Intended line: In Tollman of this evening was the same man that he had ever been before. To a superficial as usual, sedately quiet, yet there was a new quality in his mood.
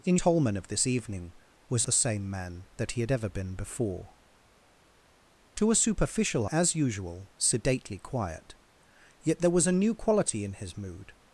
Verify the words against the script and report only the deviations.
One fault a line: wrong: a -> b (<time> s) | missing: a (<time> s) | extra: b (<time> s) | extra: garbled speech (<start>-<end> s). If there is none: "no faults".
no faults